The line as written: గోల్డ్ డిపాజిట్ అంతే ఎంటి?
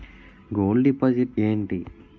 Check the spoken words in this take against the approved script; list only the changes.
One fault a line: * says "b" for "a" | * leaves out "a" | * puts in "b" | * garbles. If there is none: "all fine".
* leaves out "అంతే"